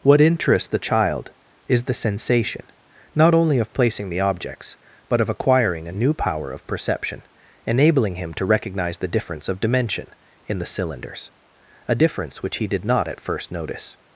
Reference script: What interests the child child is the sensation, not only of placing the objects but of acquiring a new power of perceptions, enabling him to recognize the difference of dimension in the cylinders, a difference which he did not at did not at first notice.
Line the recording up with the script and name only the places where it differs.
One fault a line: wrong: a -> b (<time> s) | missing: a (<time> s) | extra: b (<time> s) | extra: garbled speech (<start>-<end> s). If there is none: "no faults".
missing: child (1.3 s)
wrong: perceptions -> perception (6.7 s)
missing: did not at (13.2 s)